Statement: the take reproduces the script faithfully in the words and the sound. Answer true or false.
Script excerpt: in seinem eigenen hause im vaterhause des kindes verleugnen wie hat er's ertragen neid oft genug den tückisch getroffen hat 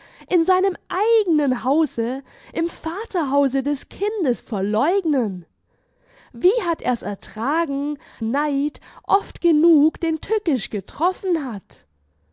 true